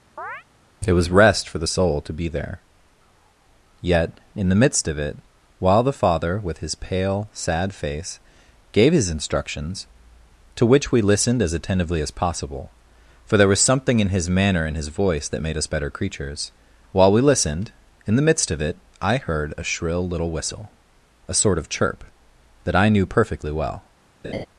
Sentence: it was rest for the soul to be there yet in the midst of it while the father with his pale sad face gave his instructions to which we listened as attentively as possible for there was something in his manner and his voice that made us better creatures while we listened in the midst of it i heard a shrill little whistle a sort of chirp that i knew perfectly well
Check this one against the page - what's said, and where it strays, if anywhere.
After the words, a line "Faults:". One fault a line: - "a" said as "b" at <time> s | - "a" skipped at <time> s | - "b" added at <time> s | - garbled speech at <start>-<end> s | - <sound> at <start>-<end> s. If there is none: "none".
it was rest for the soul to be there yet in the midst of it while the father with his pale sad face gave his instructions to which we listened as attentively as possible for there was something in his manner and his voice that made us better creatures while we listened in the midst of it i heard a shrill little whistle a sort of chirp that i knew perfectly well
Faults:
- chirp at 0.2-0.4 s
- laugh at 24.2-24.5 s